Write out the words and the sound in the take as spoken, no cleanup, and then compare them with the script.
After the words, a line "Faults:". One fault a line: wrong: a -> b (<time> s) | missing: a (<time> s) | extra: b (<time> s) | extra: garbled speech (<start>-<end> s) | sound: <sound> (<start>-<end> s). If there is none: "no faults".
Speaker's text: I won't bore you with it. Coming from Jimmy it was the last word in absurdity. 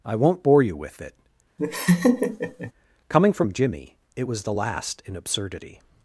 I won't bore you with it. Coming from Jimmy it was the last in absurdity.
Faults:
sound: laugh (1.6-2.7 s)
missing: word (5.0 s)